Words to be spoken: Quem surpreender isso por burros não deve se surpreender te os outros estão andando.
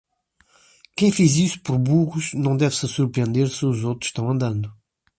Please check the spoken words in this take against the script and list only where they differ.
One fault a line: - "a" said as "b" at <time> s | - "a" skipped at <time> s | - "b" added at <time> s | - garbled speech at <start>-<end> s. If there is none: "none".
- "surpreender" said as "fez" at 1.1 s
- "te" said as "se" at 3.5 s